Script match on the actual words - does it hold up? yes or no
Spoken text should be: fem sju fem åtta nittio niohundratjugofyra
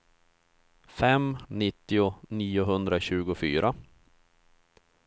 no